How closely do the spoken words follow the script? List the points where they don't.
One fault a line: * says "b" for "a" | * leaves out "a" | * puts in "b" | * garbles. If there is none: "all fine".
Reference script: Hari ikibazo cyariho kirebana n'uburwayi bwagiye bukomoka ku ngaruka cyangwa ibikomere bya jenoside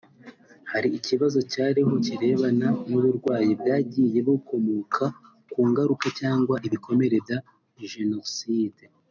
all fine